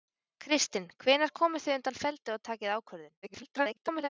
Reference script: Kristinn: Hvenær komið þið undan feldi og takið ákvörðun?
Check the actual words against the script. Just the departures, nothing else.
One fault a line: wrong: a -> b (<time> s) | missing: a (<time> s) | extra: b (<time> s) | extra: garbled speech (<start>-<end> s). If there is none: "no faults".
extra: garbled speech (3.2-4.1 s)